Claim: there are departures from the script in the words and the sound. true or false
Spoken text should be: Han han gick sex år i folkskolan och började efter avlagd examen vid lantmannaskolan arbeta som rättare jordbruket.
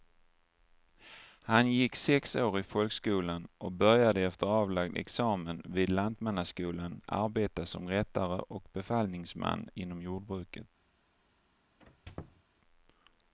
true